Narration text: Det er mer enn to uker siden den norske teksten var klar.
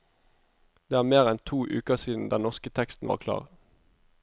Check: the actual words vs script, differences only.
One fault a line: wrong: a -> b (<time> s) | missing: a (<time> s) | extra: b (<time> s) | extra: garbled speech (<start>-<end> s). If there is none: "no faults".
no faults